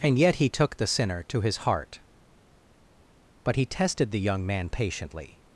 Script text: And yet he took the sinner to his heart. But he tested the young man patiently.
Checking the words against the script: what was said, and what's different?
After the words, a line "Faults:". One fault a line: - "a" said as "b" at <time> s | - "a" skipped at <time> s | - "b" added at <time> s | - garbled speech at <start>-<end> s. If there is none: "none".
And yet he took the sinner to his heart. But he tested the young man patiently.
Faults:
none